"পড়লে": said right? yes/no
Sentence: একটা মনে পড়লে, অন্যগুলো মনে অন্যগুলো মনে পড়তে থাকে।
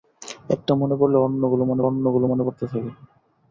yes